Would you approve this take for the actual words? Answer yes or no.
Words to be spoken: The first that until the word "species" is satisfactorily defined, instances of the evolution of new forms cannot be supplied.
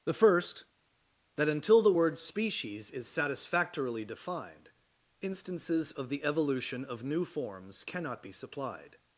yes